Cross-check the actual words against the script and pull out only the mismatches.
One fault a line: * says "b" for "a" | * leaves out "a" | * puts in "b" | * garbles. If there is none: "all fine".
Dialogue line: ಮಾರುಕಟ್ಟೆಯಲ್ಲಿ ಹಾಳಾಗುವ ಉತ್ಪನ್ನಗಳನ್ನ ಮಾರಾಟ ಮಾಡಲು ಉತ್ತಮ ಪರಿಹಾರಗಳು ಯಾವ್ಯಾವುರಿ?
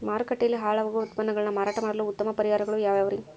all fine